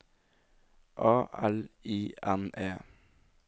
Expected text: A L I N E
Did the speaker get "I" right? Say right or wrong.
right